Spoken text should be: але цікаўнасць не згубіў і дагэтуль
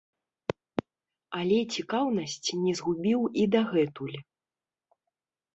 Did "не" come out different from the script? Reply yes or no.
no